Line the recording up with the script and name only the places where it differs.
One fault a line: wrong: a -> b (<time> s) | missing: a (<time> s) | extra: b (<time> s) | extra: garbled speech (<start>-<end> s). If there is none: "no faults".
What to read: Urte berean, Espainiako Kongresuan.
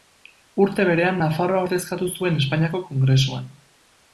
extra: Nafarroa ordezkatu zuen (1.2 s)